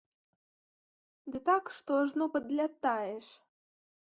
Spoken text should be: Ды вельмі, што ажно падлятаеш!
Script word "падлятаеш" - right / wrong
right